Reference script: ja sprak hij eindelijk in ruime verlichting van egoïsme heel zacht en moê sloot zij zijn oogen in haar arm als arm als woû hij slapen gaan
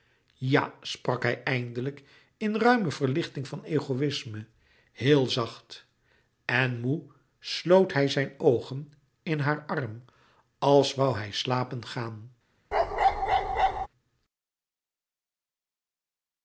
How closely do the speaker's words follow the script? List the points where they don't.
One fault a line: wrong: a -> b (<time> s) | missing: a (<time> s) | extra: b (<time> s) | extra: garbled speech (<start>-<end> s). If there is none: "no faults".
wrong: zij -> hij (7.9 s)
missing: arm als (10.9 s)